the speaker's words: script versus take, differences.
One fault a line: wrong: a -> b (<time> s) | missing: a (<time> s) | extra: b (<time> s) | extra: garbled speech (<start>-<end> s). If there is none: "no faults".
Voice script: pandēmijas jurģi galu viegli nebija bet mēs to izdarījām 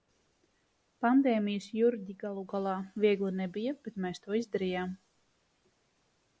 extra: galā (2.5 s)